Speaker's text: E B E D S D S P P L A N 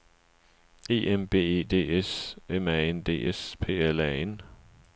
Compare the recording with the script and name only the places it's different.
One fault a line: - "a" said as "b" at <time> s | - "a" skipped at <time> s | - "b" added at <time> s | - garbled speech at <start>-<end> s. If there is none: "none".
- "M" added at 1.1 s
- "M A N" added at 2.5 s
- "P" skipped at 3.8 s